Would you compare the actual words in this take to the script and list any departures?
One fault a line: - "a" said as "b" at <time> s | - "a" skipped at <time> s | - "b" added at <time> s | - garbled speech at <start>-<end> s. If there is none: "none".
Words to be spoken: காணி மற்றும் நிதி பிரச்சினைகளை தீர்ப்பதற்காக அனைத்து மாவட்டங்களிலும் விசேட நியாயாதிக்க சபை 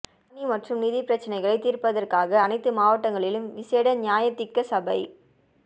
none